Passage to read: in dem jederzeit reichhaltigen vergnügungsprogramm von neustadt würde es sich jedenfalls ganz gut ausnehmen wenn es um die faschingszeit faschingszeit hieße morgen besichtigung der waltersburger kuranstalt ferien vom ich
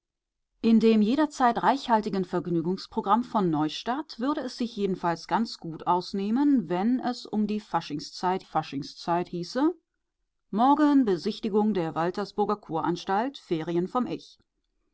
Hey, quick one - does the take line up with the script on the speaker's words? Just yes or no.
yes